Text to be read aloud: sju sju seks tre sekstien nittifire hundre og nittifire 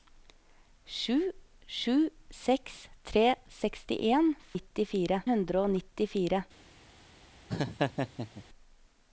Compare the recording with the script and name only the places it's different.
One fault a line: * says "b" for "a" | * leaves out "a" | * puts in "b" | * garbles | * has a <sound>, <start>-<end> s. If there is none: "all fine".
* has a laugh, 7.5-8.4 s